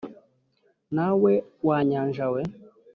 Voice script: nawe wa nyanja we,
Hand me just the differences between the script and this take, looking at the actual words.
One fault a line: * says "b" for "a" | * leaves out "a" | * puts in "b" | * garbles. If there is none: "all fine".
all fine